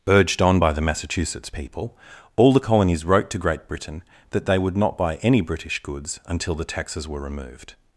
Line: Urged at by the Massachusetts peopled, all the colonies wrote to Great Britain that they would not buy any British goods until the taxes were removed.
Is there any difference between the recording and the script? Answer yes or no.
yes